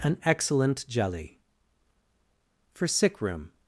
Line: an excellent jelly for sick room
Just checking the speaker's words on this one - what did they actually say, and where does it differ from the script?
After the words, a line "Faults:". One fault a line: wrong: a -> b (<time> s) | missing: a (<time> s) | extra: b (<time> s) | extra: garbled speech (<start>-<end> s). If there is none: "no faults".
an excellent jelly for sick room
Faults:
no faults